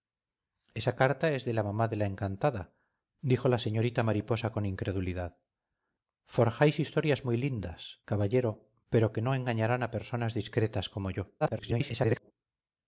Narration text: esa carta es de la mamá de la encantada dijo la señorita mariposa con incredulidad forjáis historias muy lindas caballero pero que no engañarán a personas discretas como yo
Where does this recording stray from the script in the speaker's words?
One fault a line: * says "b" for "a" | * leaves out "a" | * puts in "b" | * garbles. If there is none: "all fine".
* garbles